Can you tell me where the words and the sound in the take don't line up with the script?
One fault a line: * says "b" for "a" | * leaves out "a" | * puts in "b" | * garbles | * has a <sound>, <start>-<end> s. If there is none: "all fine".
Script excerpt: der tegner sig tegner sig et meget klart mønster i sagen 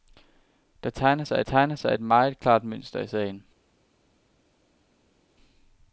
all fine